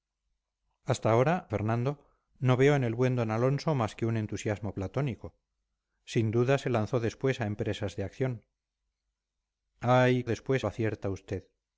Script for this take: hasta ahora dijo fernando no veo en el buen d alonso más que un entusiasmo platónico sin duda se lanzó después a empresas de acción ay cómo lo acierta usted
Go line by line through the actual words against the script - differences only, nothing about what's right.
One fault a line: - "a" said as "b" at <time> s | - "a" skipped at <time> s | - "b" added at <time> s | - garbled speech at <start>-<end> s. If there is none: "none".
- "dijo" skipped at 1.5 s
- "cómo" said as "después" at 10.3 s